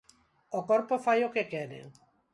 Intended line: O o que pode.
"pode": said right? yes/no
no